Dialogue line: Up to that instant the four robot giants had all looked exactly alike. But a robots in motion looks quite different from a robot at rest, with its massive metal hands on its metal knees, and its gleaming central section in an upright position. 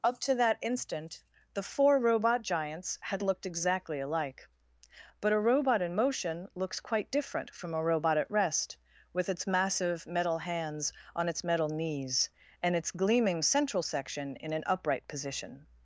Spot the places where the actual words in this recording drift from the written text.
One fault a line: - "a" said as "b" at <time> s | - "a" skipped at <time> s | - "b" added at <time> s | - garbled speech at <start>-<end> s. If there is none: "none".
- "all" skipped at 3.2 s
- "robots" said as "robot" at 5.4 s